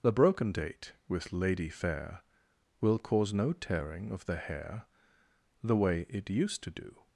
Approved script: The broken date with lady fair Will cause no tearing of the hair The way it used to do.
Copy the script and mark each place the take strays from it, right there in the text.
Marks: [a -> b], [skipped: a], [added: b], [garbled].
The broken date with lady fair Will cause no tearing of the hair The way it used to do.